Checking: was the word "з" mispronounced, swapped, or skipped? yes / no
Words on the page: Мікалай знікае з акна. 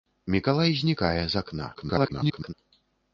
no